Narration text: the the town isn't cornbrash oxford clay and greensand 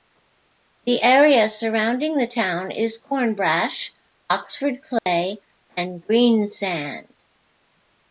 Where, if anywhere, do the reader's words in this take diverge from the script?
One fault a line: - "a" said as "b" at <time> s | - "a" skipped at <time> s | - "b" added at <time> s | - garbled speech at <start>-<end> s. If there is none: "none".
- "area surrounding" added at 1.0 s
- "isn't" said as "is" at 2.7 s